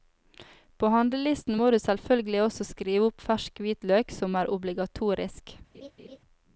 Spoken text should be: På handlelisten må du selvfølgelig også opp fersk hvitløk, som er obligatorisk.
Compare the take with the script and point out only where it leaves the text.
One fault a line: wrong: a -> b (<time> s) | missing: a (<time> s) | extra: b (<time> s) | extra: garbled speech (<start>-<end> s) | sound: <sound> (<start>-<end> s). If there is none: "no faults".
extra: skrive (2.7 s)
sound: laugh (5.7-6.2 s)